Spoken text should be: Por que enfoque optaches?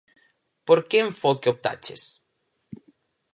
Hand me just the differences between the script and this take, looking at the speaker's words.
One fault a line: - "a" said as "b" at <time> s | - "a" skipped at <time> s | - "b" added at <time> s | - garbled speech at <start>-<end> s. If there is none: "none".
none